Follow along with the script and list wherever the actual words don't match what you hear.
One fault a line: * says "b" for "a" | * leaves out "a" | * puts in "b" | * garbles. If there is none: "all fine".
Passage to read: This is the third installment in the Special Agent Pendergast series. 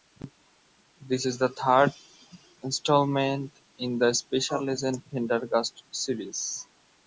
all fine